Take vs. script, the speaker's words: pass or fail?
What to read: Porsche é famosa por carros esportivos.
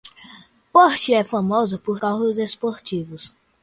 pass